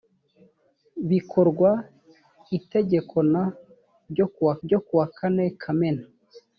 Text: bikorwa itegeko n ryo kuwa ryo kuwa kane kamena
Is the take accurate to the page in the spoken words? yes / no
yes